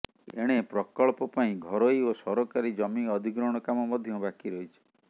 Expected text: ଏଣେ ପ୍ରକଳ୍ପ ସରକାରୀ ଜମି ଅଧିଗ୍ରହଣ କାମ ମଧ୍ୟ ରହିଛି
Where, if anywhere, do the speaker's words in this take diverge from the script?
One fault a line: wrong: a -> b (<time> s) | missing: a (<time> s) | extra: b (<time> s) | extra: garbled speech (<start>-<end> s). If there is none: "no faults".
extra: ପାଇଁ ଘରୋଇ ଓ (1.4 s)
extra: ବାକି (4.2 s)